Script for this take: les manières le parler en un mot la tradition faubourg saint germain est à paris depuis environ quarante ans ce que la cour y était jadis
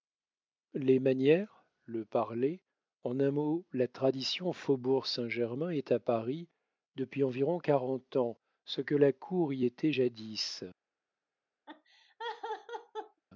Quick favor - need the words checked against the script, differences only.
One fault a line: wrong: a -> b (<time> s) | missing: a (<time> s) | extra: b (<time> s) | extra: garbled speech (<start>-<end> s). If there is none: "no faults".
no faults